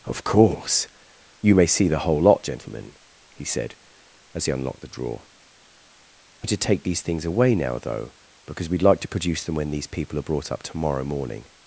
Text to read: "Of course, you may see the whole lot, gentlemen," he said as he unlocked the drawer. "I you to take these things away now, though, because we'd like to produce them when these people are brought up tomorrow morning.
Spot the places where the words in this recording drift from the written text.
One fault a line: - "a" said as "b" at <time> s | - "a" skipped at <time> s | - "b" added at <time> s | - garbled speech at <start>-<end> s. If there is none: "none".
none